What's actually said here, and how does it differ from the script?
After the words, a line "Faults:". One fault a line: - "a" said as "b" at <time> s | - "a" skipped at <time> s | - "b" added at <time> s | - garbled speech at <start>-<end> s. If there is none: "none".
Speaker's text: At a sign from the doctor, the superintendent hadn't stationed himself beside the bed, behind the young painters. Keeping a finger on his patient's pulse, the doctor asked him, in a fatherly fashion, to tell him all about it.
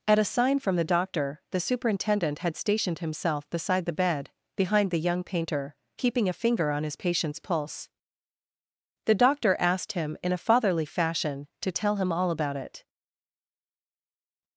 At a sign from the doctor, the superintendent had stationed himself beside the bed, behind the young painter. Keeping a finger on his patient's pulse, the doctor asked him, in a fatherly fashion, to tell him all about it.
Faults:
- "hadn't" said as "had" at 2.4 s
- "painters" said as "painter" at 5.2 s